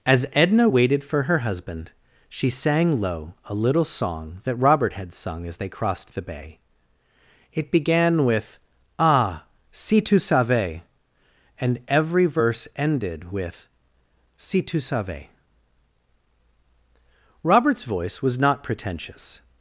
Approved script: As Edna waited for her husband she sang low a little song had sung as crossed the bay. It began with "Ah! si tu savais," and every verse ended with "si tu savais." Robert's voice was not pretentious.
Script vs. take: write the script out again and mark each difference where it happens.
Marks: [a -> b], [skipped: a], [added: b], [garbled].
As Edna waited for her husband she sang low a little song [added: that Robert] had sung as [added: they] crossed the bay. It began with "Ah! si tu savais," and every verse ended with "si tu savais." Robert's voice was not pretentious.